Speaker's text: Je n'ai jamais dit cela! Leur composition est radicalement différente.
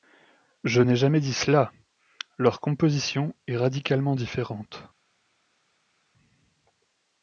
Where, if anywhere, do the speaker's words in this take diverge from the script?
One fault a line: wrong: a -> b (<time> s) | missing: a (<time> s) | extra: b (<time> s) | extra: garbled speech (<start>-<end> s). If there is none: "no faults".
no faults